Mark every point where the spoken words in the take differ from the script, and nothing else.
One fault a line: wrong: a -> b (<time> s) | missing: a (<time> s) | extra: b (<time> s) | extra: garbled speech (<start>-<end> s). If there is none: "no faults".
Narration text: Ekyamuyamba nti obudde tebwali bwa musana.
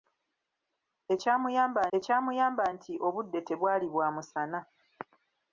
extra: ekyamuyamba (2.0 s)